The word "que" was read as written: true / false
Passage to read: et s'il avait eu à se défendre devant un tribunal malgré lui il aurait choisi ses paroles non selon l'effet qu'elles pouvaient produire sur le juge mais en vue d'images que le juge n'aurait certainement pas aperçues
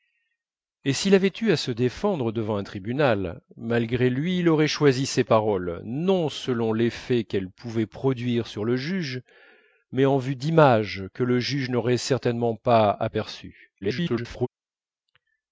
true